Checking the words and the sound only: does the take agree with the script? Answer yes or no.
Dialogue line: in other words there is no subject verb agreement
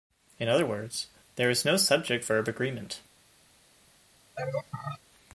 no